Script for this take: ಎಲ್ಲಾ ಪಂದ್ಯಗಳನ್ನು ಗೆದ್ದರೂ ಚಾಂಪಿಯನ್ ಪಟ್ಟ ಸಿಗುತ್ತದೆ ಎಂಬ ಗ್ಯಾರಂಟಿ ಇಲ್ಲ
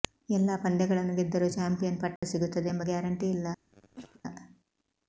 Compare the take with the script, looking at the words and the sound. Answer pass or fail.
fail